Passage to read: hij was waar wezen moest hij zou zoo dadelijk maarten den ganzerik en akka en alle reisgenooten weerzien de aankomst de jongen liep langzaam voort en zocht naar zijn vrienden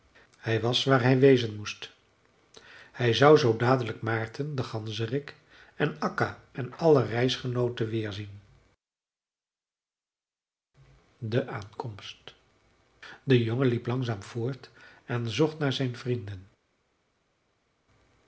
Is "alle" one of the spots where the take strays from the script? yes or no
no